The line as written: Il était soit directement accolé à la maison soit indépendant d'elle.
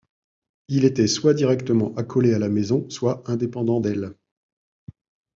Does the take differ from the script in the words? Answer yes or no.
no